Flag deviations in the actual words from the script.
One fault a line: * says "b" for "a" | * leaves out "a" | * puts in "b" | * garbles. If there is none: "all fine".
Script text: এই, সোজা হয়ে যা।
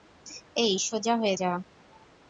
all fine